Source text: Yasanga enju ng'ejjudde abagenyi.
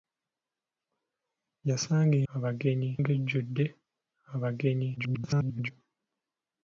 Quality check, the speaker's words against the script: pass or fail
fail